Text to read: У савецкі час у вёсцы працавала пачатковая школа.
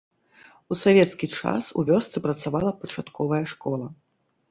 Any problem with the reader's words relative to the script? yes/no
no